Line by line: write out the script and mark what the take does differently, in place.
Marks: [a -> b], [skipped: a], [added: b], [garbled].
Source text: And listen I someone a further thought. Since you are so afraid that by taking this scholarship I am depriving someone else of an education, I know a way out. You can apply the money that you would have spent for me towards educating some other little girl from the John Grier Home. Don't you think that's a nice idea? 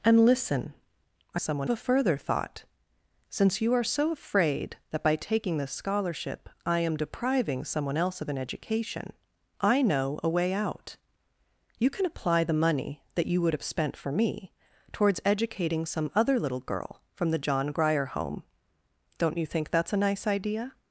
And listen I someone a further thought. Since you are so afraid that by taking this scholarship I am depriving someone else of an education, I know a way out. You can apply the money that you would have spent for me towards educating some other little girl from the John Grier Home. Don't you think that's a nice idea?